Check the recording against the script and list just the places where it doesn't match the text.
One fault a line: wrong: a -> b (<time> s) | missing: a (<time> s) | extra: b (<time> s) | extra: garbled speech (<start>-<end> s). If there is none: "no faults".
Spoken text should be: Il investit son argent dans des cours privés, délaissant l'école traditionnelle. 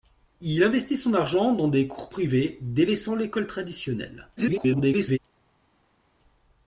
extra: garbled speech (4.4-5.2 s)